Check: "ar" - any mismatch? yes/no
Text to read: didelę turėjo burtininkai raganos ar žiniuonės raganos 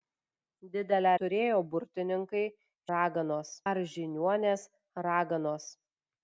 no